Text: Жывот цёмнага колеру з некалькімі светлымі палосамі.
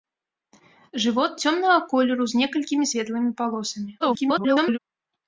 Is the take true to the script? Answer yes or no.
no